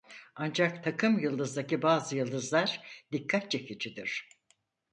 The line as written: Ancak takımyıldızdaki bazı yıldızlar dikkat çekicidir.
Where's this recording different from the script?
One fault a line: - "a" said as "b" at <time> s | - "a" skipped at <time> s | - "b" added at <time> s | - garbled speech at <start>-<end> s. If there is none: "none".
none